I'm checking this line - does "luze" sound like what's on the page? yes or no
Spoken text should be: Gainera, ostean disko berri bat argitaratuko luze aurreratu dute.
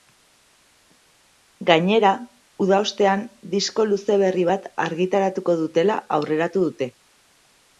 no